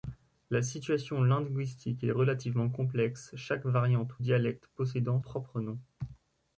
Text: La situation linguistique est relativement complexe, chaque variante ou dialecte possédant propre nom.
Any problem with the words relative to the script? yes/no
no